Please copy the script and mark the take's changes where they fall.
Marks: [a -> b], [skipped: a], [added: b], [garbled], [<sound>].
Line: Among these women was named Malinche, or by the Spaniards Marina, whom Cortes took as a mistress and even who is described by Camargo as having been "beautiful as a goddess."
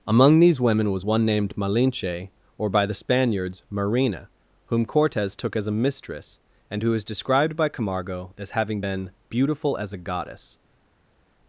Among these women was [added: one] named Malinche, or by the Spaniards Marina, whom Cortes took as a mistress and [skipped: even] who is described by Camargo as having been "beautiful as a goddess."